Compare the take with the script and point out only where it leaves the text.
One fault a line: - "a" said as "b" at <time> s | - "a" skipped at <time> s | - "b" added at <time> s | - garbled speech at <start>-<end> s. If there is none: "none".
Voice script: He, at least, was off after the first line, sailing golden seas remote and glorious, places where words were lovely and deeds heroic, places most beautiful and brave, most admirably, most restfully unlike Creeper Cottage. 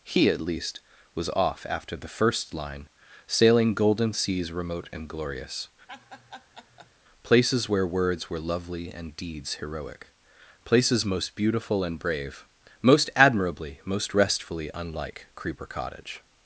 none